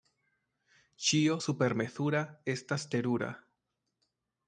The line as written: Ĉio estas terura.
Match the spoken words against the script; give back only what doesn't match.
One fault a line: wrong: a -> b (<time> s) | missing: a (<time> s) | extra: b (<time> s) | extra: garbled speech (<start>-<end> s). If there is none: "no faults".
extra: supermezura (1.5 s)